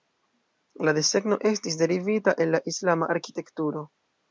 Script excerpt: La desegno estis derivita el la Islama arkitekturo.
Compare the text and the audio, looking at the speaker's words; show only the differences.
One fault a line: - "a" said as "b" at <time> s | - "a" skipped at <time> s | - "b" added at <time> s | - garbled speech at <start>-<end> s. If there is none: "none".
none